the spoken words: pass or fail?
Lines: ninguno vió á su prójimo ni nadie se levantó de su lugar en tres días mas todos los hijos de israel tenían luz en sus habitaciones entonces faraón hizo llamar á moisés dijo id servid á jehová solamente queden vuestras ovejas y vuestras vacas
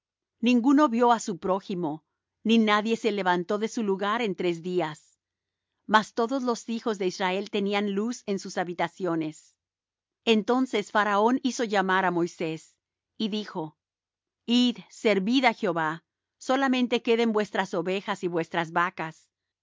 fail